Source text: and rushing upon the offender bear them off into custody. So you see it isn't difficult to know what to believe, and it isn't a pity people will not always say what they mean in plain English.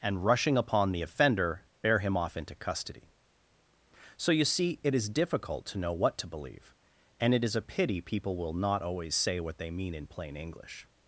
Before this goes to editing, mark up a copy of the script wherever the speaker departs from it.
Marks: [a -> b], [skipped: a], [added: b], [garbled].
and rushing upon the offender bear [them -> him] off into custody. So you see it [isn't -> is] difficult to know what to believe, and it [isn't -> is] a pity people will not always say what they mean in plain English.